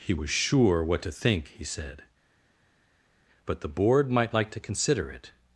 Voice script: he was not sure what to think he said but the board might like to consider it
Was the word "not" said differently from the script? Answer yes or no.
yes